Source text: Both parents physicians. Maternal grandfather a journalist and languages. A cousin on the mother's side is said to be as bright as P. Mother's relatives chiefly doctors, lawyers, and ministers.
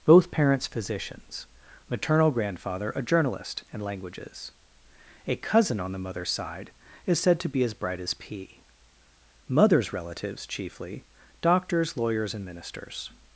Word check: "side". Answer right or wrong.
right